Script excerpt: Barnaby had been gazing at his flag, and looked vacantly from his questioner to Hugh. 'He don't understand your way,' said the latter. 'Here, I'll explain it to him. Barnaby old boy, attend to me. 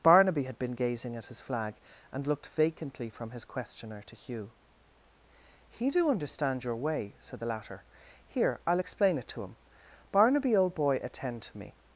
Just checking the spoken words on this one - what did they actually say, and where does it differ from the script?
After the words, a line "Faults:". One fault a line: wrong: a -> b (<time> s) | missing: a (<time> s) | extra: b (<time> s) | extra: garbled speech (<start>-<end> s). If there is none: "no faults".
Barnaby had been gazing at his flag, and looked vacantly from his questioner to Hugh. 'He do understand your way,' said the latter. 'Here, I'll explain it to him. Barnaby old boy, attend to me.
Faults:
wrong: don't -> do (5.9 s)